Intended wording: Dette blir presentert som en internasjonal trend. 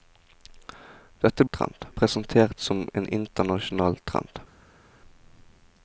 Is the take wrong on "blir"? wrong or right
wrong